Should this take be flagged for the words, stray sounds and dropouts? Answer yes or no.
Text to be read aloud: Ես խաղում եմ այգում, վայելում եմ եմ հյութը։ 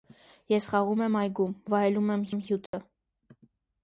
yes